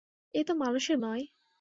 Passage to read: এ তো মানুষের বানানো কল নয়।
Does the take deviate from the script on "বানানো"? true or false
true